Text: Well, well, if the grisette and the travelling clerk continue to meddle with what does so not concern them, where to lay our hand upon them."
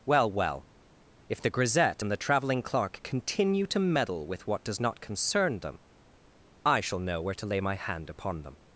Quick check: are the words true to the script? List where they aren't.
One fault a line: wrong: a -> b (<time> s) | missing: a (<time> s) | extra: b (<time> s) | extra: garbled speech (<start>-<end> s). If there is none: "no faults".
missing: so (4.8 s)
extra: I shall know (6.6 s)
wrong: our -> my (7.6 s)